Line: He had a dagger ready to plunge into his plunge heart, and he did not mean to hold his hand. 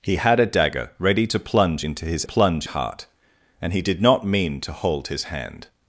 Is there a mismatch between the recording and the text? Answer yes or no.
no